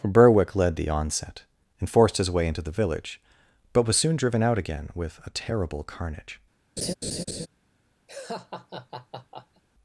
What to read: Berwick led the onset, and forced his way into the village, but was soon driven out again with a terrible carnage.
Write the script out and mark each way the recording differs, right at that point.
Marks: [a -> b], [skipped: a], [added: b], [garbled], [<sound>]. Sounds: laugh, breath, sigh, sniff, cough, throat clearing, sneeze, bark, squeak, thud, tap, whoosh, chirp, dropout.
Berwick led the onset, and forced his way into the village, but was soon driven out again with a terrible carnage. [laugh] [laugh]